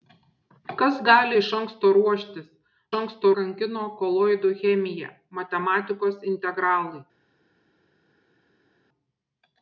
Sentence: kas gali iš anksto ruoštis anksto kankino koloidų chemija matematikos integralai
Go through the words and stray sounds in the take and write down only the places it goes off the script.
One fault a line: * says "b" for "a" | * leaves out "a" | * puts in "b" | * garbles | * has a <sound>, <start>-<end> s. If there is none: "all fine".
all fine